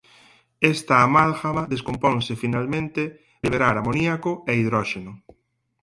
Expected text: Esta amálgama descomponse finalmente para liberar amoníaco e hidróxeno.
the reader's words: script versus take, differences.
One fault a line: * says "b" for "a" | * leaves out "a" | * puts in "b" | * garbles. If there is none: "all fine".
* leaves out "para"